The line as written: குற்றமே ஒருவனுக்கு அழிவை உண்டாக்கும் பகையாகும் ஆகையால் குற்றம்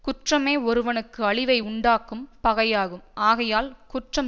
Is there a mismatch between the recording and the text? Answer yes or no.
no